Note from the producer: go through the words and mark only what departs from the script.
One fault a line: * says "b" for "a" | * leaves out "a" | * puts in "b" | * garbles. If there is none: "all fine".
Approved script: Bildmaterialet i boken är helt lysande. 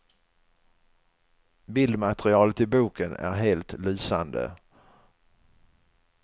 all fine